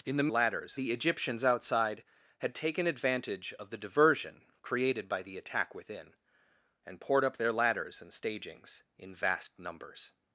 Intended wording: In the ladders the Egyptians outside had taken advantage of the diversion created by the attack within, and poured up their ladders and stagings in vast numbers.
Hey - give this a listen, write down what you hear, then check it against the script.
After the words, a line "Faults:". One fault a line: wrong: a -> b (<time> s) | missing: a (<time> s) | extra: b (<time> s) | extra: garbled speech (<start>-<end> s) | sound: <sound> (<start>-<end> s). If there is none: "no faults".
In the ladders the Egyptians outside had taken advantage of the diversion created by the attack within, and poured up their ladders and stagings in vast numbers.
Faults:
no faults